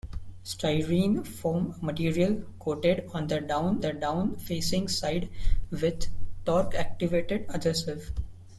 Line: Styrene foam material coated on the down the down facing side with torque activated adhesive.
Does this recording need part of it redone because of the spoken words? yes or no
no